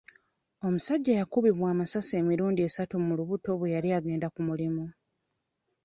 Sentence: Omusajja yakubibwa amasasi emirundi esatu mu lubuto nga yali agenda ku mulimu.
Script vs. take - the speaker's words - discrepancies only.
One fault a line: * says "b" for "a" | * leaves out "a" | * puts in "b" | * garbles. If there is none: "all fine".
* says "bwe" for "nga"